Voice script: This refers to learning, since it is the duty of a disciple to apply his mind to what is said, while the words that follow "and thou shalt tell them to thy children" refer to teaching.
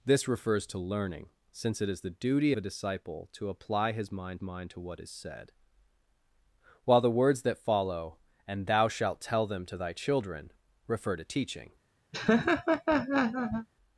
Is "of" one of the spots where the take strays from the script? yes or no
yes